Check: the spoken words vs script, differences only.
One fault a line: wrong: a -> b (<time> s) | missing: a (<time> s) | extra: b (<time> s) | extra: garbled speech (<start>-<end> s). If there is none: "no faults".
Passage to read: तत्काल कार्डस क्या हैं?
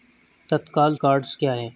no faults